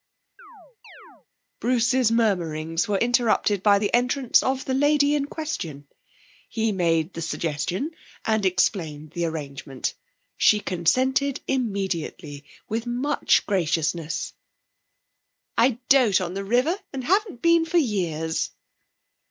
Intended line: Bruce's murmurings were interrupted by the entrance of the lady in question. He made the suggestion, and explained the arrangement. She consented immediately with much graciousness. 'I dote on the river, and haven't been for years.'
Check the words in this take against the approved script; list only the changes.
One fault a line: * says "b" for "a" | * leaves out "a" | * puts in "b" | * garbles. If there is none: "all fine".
all fine